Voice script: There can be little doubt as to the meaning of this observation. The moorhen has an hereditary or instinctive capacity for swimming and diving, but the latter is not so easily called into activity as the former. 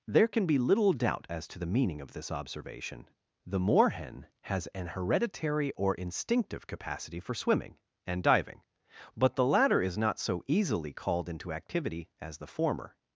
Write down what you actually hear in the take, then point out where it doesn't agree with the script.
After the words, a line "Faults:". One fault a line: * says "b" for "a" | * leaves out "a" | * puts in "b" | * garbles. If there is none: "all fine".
There can be little doubt as to the meaning of this observation. The moorhen has an hereditary or instinctive capacity for swimming and diving, but the latter is not so easily called into activity as the former.
Faults:
all fine